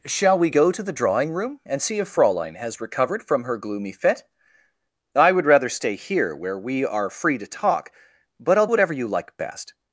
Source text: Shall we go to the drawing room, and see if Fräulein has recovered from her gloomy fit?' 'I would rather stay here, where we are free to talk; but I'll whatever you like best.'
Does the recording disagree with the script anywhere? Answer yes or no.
no